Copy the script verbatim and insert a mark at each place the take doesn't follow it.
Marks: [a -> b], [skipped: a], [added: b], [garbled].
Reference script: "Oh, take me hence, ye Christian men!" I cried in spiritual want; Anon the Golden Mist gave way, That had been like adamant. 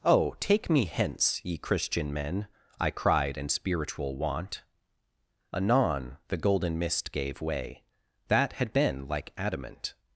"Oh, take me hence, ye Christian men!" I cried in spiritual want; Anon the Golden Mist gave way, That had been like adamant.